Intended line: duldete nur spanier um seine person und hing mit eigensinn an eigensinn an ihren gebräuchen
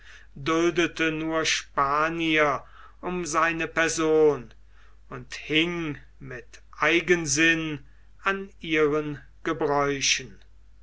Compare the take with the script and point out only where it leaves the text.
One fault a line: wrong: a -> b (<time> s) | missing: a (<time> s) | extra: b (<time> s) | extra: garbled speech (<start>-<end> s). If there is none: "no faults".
missing: eigensinn an (8.5 s)